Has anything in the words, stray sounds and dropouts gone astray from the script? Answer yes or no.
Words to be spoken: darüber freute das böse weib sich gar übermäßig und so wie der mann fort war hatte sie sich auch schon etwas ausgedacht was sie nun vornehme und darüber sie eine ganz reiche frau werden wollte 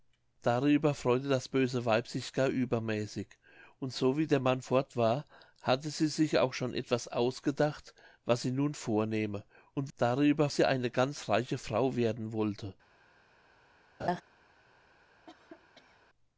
yes